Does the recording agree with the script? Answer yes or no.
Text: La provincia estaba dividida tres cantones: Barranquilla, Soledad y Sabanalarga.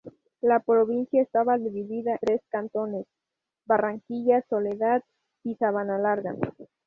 yes